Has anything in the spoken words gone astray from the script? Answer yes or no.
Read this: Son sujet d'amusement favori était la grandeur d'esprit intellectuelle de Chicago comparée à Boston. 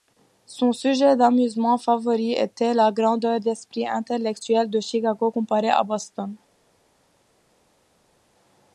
no